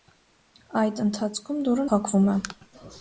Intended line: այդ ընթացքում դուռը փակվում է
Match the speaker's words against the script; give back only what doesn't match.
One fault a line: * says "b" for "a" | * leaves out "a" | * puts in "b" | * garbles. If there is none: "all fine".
all fine